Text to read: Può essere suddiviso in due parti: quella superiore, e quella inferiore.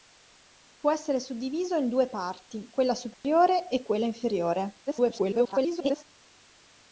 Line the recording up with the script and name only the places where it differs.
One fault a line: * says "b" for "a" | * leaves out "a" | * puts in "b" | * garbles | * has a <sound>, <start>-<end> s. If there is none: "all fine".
* has a dropout, 3.1-3.2 s
* garbles